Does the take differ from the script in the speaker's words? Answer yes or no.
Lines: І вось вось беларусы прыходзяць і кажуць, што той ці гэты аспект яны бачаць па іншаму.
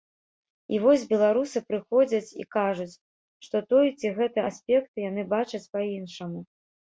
yes